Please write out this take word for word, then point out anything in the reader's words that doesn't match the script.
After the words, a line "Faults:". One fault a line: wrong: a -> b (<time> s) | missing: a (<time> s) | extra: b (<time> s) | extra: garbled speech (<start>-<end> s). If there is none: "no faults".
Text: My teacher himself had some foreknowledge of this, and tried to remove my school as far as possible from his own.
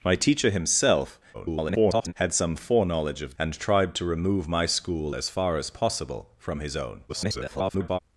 My teacher himself [garbled] had some foreknowledge of and tried to remove my school as far as possible from his own. [garbled]
Faults:
extra: garbled speech (1.3-2.1 s)
missing: this (3.3 s)
extra: garbled speech (7.1-8.0 s)